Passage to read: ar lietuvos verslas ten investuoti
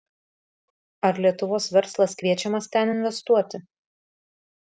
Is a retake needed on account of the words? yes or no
yes